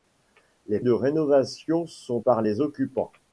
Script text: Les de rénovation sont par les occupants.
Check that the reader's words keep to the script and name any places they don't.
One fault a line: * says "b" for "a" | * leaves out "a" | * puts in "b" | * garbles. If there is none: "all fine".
all fine